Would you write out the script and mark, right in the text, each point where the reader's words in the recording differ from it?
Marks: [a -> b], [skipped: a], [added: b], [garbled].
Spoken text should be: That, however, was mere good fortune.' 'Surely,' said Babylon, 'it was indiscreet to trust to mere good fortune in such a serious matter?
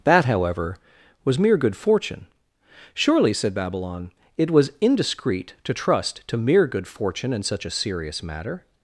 That, however, was mere good fortune.' 'Surely,' said Babylon, 'it was indiscreet to trust to mere good fortune in such a serious matter?